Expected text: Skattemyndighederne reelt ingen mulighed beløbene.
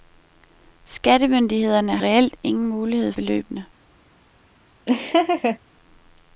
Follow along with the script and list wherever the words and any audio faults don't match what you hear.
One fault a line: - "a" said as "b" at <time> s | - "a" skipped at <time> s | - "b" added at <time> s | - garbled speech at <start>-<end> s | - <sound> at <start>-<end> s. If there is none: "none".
- laugh at 4.9-5.6 s